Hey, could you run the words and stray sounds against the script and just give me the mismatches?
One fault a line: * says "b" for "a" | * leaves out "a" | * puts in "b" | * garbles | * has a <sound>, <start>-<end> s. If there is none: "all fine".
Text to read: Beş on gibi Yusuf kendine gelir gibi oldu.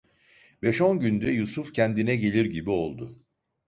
* says "günde" for "gibi"